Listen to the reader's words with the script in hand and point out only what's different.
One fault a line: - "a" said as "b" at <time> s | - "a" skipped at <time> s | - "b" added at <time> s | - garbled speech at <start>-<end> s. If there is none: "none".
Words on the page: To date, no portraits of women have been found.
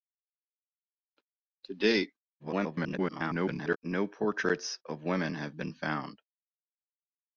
- garbled speech at 2.4-3.8 s